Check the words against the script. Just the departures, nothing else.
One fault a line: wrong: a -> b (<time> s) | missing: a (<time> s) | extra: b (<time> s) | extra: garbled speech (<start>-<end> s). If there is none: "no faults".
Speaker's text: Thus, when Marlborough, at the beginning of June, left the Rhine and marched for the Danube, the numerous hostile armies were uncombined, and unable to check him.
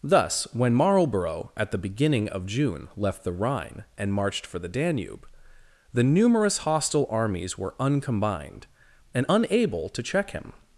no faults